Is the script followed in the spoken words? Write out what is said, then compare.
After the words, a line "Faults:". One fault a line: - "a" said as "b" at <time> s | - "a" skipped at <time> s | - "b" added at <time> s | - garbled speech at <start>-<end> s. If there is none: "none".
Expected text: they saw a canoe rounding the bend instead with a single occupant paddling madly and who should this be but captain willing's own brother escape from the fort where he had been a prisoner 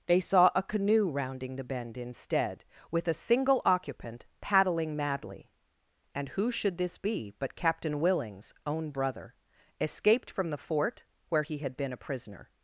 they saw a canoe rounding the bend instead with a single occupant paddling madly and who should this be but captain willing's own brother escaped from the fort where he had been a prisoner
Faults:
- "escape" said as "escaped" at 9.8 s